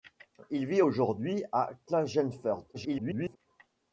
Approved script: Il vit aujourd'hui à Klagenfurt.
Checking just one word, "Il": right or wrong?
right